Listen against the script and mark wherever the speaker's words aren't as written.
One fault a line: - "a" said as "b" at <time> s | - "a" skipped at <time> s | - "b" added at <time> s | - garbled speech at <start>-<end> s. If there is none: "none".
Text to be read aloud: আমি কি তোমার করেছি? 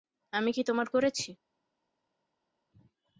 none